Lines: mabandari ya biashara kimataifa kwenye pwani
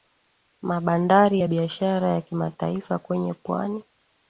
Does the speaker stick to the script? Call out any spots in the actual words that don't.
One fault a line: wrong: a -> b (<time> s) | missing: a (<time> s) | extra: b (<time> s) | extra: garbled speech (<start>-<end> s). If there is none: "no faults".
extra: ya (2.1 s)